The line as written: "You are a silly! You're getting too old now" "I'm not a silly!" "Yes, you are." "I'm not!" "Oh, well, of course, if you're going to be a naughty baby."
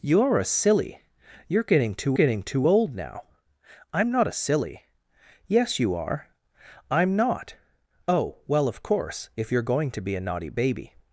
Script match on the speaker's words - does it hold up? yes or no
no